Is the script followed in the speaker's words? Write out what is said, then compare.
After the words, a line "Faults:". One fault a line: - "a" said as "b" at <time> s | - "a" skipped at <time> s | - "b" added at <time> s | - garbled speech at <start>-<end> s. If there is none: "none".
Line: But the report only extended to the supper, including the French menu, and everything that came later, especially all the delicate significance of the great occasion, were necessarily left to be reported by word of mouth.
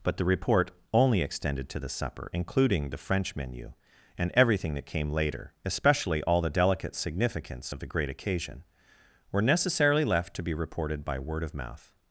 But the report only extended to the supper, including the French menu, and everything that came later, especially all the delicate significance of the great occasion, were necessarily left to be reported by word of mouth.
Faults:
none